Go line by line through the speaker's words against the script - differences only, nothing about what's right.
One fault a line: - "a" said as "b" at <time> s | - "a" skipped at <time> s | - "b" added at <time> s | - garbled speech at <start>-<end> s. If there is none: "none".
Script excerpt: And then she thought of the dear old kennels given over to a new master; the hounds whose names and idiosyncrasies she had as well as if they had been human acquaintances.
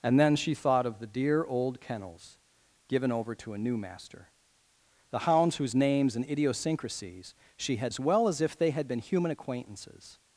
none